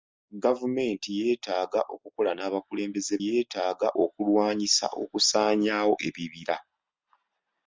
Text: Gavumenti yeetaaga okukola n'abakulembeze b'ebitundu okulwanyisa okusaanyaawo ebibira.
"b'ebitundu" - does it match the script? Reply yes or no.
no